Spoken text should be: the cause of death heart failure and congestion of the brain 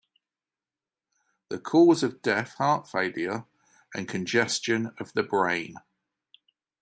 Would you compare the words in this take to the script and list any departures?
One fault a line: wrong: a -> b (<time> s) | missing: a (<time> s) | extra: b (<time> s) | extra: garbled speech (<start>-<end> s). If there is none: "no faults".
no faults